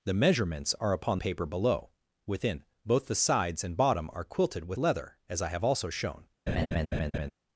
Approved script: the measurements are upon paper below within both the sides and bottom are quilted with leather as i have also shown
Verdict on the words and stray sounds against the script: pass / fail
fail